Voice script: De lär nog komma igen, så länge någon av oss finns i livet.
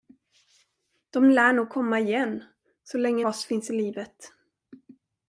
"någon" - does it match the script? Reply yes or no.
no